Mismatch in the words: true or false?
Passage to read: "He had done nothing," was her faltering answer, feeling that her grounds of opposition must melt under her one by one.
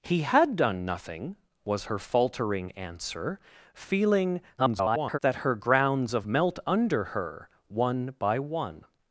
true